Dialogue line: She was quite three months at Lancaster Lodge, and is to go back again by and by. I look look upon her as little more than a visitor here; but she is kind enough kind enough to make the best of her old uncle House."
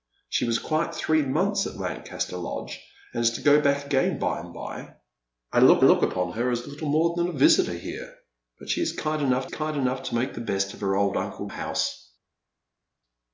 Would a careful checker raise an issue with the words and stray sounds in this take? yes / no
no